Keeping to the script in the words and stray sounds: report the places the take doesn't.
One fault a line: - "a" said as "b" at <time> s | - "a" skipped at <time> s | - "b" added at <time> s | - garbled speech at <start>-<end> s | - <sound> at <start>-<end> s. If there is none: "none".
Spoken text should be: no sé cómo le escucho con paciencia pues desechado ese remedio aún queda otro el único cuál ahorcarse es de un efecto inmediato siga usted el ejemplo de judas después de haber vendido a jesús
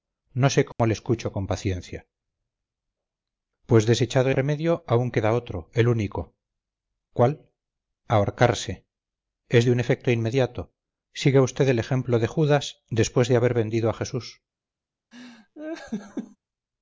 - dropout at 0.7-0.8 s
- "ese" skipped at 4.3 s
- laugh at 15.1-16.4 s